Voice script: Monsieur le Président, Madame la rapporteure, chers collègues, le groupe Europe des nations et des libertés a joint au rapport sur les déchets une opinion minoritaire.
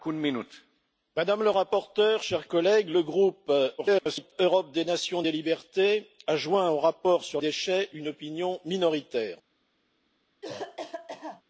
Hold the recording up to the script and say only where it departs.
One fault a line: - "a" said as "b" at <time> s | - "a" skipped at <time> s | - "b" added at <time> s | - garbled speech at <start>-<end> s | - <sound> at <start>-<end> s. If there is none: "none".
- garbled speech at 3.8-4.3 s
- "les" skipped at 7.4 s
- cough at 10.4-11.4 s